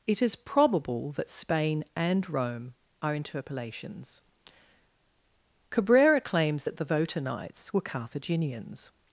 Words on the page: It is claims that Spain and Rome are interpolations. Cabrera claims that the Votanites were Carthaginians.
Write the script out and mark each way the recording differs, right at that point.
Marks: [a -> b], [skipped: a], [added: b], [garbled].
It is [claims -> probable] that Spain and Rome are interpolations. Cabrera claims that the Votanites were Carthaginians.